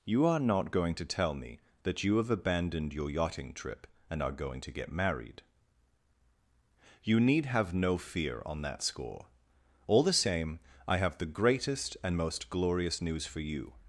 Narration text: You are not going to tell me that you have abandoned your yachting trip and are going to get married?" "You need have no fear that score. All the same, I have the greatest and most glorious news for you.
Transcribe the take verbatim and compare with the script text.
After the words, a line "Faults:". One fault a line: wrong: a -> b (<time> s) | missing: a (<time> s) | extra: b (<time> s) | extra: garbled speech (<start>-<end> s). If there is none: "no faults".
You are not going to tell me that you have abandoned your yachting trip and are going to get married?" "You need have no fear on that score. All the same, I have the greatest and most glorious news for you.
Faults:
extra: on (8.5 s)